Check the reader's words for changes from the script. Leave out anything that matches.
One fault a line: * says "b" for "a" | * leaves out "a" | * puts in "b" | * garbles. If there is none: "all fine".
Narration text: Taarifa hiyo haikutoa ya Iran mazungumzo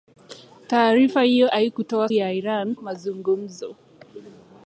all fine